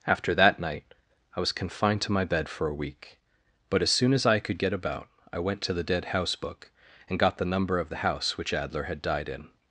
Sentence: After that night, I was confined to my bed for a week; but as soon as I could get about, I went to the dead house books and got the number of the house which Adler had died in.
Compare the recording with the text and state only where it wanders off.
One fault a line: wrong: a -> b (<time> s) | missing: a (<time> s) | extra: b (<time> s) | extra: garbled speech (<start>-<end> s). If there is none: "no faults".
wrong: books -> book (6.3 s)